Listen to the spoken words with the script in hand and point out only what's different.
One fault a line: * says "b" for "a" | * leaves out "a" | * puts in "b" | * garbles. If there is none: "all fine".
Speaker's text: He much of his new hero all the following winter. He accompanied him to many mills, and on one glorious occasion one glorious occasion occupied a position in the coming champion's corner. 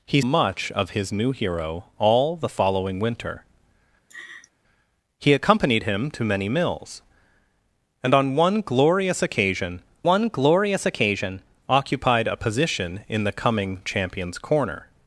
all fine